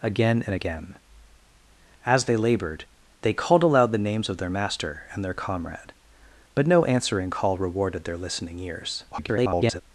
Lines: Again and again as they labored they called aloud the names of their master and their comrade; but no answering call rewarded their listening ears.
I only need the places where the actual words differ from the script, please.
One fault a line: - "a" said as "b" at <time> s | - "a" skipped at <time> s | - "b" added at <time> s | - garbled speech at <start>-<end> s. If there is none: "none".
- garbled speech at 9.1-9.8 s